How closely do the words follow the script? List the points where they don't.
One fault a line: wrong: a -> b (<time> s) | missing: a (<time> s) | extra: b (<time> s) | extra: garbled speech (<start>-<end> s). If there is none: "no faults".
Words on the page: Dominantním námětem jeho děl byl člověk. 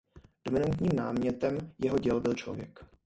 no faults